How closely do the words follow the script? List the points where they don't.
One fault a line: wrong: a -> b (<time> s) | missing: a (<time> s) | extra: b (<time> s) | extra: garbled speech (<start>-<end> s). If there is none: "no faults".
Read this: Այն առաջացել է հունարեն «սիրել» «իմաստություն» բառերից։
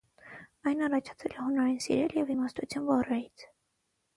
extra: և (2.2 s)